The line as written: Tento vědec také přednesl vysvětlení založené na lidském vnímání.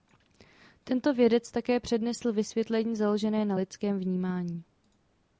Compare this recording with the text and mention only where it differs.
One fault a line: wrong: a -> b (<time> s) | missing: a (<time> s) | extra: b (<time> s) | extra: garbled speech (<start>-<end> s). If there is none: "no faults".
no faults